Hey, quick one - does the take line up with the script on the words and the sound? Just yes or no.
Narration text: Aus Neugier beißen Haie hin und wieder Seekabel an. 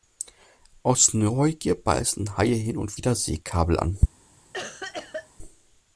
no